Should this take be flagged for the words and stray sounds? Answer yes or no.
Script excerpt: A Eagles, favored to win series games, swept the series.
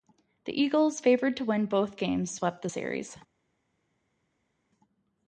yes